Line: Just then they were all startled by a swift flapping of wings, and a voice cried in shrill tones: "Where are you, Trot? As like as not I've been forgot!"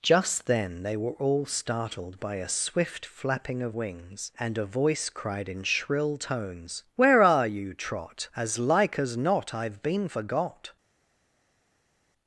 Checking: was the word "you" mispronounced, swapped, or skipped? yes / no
no